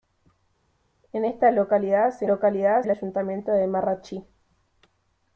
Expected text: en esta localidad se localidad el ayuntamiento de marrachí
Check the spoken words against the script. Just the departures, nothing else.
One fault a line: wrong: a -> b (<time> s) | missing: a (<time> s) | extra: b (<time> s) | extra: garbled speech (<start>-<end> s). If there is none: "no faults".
no faults